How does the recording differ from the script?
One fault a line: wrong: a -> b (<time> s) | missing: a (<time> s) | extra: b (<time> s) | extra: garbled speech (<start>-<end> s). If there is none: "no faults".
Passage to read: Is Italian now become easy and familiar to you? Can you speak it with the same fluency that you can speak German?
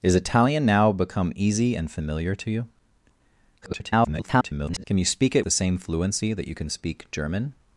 extra: garbled speech (3.6-4.8 s)
missing: with (5.4 s)